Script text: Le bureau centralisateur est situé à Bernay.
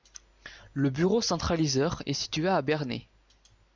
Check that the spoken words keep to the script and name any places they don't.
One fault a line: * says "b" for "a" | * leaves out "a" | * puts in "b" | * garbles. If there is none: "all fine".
all fine